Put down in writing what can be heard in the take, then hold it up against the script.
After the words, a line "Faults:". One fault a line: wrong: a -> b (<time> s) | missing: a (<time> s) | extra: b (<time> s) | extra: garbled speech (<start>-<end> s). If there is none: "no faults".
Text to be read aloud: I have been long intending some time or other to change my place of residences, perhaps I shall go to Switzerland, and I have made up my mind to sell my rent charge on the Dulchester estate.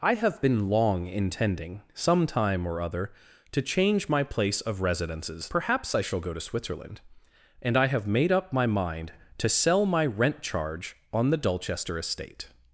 I have been long intending some time or other to change my place of residences, perhaps I shall go to Switzerland, and I have made up my mind to sell my rent charge on the Dulchester estate.
Faults:
no faults